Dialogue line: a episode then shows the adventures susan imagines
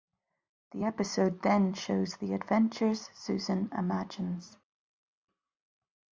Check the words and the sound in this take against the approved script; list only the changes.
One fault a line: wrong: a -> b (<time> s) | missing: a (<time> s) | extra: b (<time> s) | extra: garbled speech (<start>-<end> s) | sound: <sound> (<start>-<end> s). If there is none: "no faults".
wrong: a -> the (0.7 s)